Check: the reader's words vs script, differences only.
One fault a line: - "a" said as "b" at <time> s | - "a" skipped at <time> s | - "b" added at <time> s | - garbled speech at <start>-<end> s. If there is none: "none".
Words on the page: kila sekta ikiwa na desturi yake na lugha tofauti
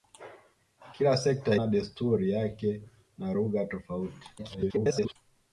- "ikiwa" skipped at 1.6 s
- garbled speech at 4.4-5.2 s